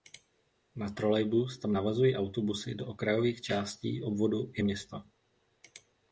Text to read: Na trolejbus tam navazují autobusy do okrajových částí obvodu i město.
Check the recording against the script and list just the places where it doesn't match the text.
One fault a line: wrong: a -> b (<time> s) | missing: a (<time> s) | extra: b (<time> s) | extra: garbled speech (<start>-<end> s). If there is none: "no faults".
no faults